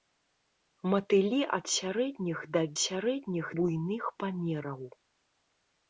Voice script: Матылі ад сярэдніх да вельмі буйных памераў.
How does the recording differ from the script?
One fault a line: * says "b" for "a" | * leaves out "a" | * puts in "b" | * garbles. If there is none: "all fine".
* says "сярэдніх" for "вельмі"